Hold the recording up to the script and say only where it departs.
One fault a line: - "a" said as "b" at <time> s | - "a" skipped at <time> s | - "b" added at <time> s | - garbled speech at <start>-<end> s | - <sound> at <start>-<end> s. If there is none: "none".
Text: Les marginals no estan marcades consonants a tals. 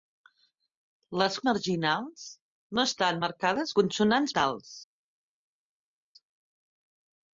none